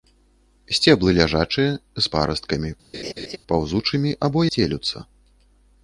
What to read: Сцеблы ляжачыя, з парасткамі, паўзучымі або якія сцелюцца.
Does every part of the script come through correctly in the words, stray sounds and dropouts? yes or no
no